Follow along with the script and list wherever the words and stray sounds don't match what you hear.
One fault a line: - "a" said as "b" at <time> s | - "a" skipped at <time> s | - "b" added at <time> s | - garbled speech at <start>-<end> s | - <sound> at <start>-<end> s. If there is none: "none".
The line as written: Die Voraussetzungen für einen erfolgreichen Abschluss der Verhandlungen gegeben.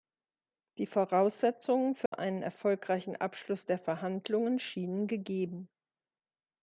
- dropout at 2.1-2.1 s
- "schienen" added at 4.6 s